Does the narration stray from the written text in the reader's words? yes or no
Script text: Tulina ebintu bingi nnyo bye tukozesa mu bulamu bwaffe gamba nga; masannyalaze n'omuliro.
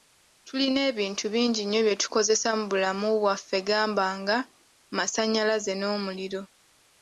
no